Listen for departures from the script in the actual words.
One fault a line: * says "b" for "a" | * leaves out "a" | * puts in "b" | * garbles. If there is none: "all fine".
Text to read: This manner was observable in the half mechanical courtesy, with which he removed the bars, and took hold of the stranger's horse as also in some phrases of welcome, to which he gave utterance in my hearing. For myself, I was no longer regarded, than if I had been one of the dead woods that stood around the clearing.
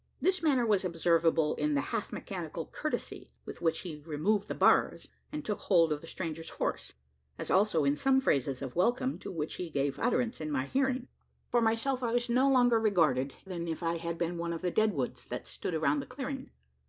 all fine